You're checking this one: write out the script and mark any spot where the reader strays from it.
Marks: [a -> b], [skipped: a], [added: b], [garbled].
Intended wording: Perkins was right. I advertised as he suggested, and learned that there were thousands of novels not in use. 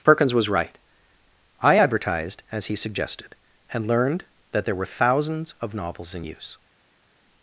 Perkins was right. I advertised as he suggested, and learned that there were thousands of novels [skipped: not] in use.